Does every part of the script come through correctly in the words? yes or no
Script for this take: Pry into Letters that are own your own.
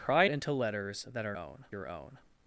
yes